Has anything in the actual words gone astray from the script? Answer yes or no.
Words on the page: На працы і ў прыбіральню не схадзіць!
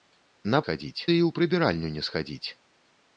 yes